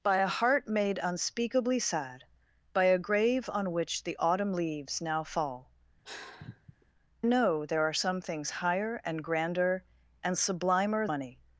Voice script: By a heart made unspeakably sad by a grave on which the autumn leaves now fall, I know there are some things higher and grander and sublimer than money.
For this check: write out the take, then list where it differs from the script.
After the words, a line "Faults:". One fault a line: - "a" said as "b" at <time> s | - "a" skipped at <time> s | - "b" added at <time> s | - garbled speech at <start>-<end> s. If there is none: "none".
By a heart made unspeakably sad by a grave on which the autumn leaves now fall, know there are some things higher and grander and sublimer money.
Faults:
- "I" skipped at 5.7 s
- "than" skipped at 11.1 s